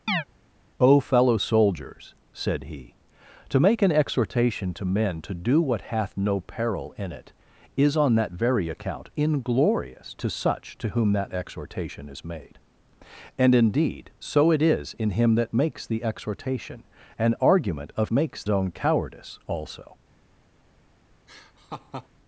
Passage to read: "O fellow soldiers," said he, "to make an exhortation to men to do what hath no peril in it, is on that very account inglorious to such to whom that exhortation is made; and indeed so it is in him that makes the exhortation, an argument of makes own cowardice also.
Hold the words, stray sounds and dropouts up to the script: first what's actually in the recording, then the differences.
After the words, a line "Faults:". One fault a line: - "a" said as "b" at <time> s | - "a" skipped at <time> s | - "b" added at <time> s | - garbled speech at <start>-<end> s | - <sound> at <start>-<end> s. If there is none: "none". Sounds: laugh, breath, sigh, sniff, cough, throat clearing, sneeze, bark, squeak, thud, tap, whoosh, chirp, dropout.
"O fellow soldiers," said he, "to make an exhortation to men to do what hath no peril in it, is on that very account inglorious to such to whom that exhortation is made; and indeed so it is in him that makes the exhortation, an argument of makes own cowardice also.
Faults:
- chirp at 0.1-0.2 s
- laugh at 21.3-22.1 s